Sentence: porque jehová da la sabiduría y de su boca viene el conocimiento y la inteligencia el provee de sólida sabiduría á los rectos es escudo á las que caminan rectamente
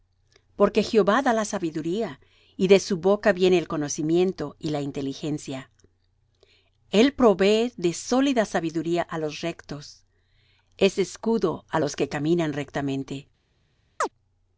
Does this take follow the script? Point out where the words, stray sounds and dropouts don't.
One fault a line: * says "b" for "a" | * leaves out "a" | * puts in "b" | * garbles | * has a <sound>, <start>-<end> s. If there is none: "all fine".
* says "los" for "las"
* has a chirp, 14.0-14.1 s